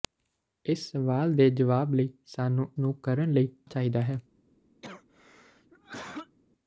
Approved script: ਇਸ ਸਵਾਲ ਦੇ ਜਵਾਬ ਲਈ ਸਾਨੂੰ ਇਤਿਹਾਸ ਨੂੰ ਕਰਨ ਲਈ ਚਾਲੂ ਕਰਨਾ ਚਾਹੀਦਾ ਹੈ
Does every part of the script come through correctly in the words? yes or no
no